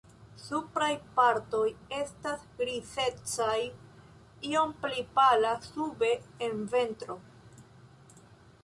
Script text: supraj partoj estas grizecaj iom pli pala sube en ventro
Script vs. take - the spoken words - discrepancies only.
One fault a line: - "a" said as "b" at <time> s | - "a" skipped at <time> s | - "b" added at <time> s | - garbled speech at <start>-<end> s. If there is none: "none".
none